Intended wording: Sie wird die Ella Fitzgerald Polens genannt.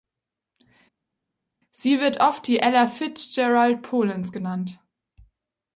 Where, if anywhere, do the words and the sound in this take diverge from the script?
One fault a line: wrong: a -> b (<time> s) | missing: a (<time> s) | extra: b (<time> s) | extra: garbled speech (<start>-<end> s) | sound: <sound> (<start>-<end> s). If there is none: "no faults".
extra: oft (2.2 s)